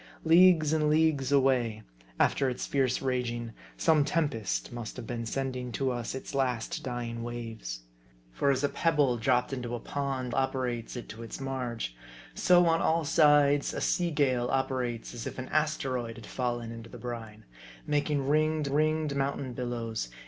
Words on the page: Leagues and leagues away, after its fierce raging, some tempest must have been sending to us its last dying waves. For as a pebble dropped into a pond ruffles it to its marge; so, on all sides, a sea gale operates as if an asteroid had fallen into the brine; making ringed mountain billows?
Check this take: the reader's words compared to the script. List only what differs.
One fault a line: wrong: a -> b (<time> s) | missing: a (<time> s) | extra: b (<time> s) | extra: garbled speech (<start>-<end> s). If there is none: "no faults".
wrong: ruffles -> operates (10.3 s)
extra: ringed (18.7 s)